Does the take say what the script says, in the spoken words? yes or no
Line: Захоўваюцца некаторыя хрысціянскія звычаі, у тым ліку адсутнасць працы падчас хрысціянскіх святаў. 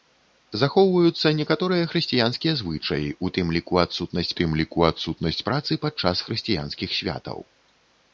no